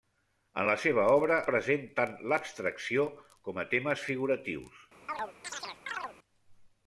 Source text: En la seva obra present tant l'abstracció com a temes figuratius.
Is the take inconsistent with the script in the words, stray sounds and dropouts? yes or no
yes